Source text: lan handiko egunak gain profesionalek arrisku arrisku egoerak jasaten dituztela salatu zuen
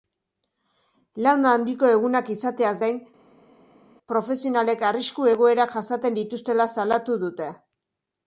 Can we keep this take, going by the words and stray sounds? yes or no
no